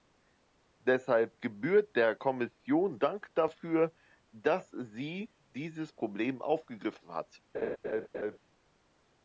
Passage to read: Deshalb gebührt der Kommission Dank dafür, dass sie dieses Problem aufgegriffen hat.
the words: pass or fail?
pass